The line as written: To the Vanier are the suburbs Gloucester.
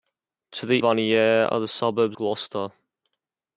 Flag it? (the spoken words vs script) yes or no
no